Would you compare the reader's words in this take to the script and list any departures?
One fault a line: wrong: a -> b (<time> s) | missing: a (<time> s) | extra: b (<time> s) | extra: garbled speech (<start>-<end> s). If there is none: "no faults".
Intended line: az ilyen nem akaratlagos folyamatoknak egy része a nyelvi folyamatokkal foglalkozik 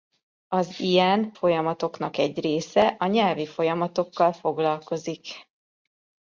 missing: nem akaratlagos (1.3 s)